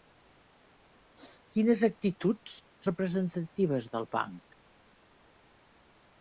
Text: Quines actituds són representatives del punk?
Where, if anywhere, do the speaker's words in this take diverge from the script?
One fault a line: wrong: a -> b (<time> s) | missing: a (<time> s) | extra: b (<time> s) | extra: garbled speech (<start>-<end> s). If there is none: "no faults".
missing: són (2.6 s)